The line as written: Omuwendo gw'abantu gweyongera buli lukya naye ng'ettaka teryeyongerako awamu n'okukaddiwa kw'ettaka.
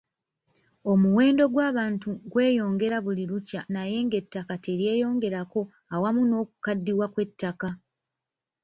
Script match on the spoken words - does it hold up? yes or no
yes